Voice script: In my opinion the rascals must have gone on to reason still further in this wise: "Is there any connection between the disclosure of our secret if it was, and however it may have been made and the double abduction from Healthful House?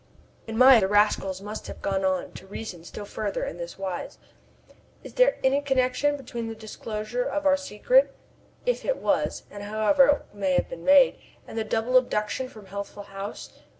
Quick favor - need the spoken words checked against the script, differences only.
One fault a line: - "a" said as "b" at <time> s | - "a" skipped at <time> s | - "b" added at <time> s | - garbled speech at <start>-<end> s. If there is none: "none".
- "opinion" skipped at 0.8 s